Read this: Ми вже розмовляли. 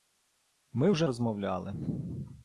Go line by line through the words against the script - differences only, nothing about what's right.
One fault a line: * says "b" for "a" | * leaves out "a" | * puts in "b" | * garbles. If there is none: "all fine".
all fine